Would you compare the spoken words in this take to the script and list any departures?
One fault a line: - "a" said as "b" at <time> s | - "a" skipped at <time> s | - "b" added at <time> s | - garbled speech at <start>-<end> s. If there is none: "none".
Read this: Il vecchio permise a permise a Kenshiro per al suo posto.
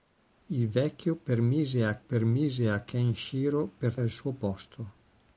none